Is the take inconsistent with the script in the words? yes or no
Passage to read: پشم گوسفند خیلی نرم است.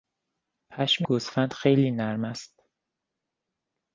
no